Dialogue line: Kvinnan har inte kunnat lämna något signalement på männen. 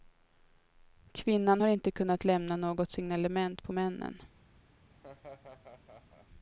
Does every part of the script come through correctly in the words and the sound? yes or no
no